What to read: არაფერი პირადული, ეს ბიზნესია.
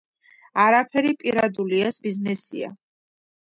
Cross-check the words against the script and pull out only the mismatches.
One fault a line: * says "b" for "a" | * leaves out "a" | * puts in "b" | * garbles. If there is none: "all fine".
all fine